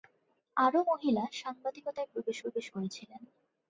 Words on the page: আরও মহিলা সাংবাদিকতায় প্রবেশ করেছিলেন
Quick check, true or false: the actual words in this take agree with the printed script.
false